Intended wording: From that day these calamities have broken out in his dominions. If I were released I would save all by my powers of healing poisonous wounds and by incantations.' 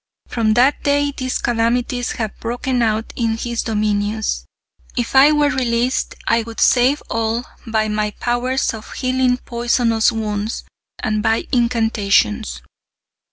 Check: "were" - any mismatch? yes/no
no